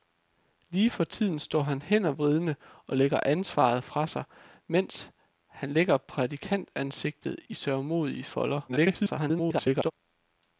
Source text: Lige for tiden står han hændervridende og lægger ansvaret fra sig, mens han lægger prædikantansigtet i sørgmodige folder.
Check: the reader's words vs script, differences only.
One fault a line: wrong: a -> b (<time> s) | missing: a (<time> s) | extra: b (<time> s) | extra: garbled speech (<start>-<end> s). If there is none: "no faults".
extra: garbled speech (8.7-9.9 s)